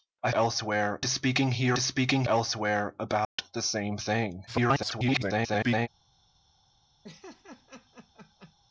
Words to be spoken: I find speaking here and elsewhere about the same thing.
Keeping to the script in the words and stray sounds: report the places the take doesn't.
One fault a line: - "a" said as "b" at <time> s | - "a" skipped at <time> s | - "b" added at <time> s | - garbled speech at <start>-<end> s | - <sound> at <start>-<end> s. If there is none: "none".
- "find" said as "elsewhere" at 0.3 s
- "and" said as "speaking" at 1.8 s
- dropout at 3.2-3.4 s
- garbled speech at 4.5-5.9 s
- laugh at 7.0-8.5 s